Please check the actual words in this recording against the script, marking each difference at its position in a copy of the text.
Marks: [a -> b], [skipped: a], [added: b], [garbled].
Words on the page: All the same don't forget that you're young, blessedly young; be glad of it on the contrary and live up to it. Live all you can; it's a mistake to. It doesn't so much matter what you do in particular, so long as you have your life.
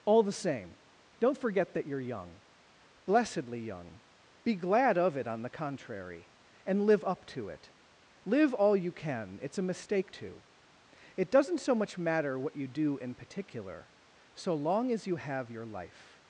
All the same don't forget that you're young, blessedly young; be glad of it on the contrary and live up to it. Live all you can; it's a mistake to. It doesn't so much matter what you do in particular, so long as you have your life.